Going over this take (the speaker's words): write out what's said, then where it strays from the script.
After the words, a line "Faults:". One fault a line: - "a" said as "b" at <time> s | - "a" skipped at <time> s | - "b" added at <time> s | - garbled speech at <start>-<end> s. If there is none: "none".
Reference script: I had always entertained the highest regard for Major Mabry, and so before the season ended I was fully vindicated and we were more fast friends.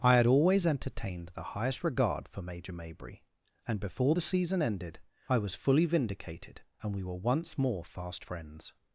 I had always entertained the highest regard for Major Mabry, and before the season ended I was fully vindicated and we were once more fast friends.
Faults:
- "so" skipped at 3.8 s
- "once" added at 7.2 s